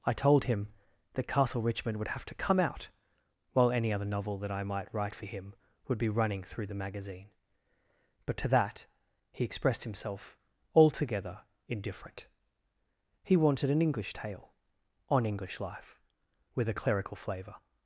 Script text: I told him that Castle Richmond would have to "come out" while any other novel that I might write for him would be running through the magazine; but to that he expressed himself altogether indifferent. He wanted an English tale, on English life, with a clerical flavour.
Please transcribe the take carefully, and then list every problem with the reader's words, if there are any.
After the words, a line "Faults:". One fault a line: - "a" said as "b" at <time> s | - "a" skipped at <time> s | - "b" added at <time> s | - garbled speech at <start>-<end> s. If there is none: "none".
I told him that Castle Richmond would have to "come out" while any other novel that I might write for him would be running through the magazine; but to that he expressed himself altogether indifferent. He wanted an English tale, on English life, with a clerical flavour.
Faults:
none